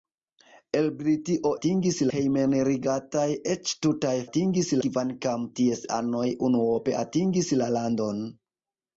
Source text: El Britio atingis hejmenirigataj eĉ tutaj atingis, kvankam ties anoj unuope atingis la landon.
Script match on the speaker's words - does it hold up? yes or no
yes